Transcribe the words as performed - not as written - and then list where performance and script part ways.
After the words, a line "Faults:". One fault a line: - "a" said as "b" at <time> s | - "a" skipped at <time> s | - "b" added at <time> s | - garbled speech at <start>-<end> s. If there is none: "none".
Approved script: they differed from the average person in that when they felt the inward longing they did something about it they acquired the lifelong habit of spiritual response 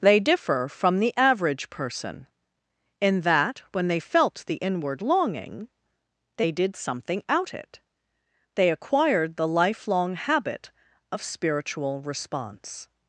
they differ from the average person in that when they felt the inward longing they did something out it they acquired the lifelong habit of spiritual response
Faults:
- "differed" said as "differ" at 0.2 s
- "about" said as "out" at 7.3 s